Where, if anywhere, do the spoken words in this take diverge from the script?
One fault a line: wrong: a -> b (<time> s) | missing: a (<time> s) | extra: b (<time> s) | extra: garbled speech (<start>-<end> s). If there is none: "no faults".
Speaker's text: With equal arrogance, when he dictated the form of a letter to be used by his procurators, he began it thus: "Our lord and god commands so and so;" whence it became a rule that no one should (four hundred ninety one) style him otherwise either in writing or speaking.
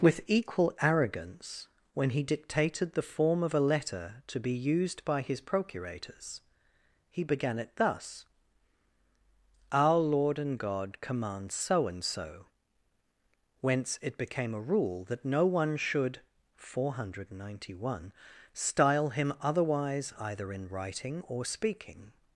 no faults